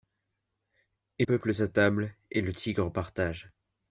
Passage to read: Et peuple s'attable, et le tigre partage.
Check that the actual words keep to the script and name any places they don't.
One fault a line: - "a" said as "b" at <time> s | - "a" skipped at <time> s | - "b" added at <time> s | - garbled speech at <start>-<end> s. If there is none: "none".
none